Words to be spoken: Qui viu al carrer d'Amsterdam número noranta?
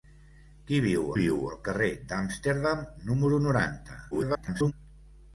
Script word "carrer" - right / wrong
right